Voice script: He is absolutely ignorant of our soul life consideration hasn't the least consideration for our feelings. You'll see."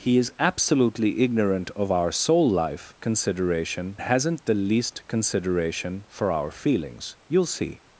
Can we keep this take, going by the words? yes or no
yes